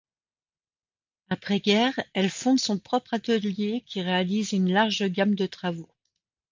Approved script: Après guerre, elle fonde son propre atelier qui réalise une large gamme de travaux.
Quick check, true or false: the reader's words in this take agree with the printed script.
true